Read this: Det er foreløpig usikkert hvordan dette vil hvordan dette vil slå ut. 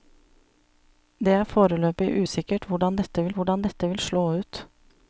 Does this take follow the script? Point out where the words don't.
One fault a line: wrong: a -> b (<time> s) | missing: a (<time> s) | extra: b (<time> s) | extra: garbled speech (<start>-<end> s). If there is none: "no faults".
no faults